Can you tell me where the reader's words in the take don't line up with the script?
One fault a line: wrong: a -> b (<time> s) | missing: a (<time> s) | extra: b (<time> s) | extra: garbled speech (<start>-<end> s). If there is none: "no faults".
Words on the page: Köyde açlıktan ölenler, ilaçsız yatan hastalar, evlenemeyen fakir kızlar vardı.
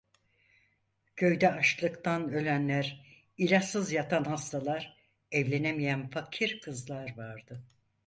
no faults